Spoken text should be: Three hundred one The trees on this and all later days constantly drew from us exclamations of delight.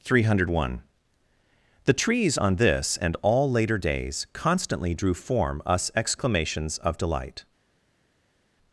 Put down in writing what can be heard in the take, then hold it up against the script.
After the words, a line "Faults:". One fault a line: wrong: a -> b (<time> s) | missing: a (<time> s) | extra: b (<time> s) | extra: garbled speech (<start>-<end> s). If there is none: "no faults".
Three hundred one The trees on this and all later days constantly drew form us exclamations of delight.
Faults:
wrong: from -> form (5.2 s)